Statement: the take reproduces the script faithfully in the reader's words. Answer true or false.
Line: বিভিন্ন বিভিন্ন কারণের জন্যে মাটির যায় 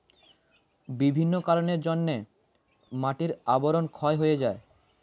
false